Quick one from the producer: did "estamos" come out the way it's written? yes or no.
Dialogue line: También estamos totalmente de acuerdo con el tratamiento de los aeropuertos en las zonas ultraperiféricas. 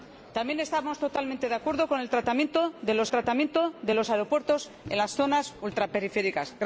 yes